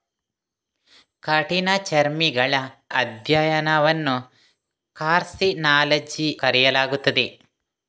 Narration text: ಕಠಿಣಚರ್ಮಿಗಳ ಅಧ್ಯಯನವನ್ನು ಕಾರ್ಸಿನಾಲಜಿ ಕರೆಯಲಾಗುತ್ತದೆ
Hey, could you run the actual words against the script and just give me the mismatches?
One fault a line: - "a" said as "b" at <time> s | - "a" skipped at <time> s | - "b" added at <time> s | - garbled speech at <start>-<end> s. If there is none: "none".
none